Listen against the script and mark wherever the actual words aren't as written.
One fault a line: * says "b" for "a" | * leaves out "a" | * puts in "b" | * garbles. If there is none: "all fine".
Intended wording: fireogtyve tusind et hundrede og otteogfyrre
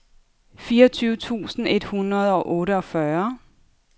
all fine